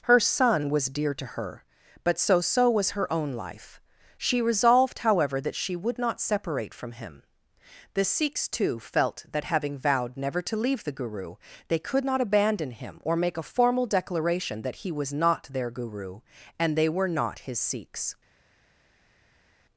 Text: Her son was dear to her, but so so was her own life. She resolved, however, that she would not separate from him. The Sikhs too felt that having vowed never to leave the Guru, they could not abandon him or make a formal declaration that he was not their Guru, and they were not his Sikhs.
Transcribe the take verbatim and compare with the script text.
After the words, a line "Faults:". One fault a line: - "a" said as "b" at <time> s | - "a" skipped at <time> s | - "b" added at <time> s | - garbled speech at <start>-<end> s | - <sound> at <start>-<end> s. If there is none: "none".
Her son was dear to her, but so so was her own life. She resolved, however, that she would not separate from him. The Sikhs too felt that having vowed never to leave the Guru, they could not abandon him or make a formal declaration that he was not their Guru, and they were not his Sikhs.
Faults:
none